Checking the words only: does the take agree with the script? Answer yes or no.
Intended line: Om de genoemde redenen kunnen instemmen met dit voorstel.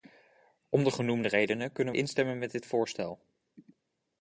yes